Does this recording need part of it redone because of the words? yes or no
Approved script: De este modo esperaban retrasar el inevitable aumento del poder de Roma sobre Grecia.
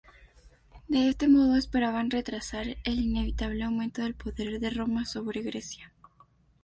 no